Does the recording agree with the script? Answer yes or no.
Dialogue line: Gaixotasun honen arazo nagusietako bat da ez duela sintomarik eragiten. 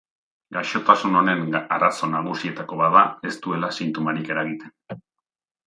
yes